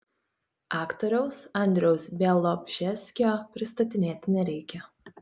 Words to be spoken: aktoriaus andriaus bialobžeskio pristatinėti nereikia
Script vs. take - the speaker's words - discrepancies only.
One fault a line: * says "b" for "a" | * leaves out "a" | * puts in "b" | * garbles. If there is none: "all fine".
all fine